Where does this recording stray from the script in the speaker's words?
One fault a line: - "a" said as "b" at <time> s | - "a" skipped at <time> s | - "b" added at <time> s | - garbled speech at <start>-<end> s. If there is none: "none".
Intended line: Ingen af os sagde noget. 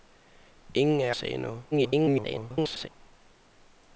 - "os" skipped at 1.1 s
- garbled speech at 1.7-2.9 s